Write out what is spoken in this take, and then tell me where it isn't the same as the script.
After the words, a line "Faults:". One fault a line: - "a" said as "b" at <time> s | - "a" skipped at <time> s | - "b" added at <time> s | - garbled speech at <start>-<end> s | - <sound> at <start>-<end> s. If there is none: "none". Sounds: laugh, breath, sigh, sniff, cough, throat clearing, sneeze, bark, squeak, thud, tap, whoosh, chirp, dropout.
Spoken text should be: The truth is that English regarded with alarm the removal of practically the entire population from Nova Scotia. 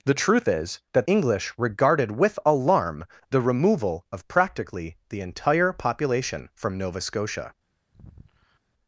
The truth is that English regarded with alarm the removal of practically the entire population from Nova Scotia.
Faults:
- sigh at 7.9-8.6 s